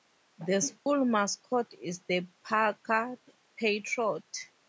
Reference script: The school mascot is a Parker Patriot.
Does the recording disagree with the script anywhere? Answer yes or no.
yes